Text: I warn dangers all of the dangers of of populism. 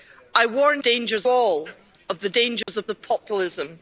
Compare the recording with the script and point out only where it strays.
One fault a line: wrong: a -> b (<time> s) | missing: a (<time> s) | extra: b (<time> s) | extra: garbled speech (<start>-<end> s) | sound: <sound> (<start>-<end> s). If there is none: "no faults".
sound: dropout (2.6-2.7 s)